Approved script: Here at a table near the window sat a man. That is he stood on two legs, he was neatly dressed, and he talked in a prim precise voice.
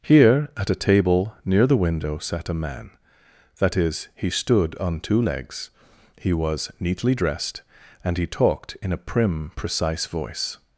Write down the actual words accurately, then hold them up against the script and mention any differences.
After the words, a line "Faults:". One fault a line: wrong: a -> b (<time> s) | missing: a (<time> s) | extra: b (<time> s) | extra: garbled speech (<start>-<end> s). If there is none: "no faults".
Here at a table near the window sat a man. That is he stood on two legs, he was neatly dressed, and he talked in a prim precise voice.
Faults:
no faults